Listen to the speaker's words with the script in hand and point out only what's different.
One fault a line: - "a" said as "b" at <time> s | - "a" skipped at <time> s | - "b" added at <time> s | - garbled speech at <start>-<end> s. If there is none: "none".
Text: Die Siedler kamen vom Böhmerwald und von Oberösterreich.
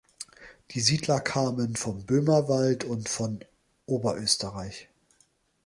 none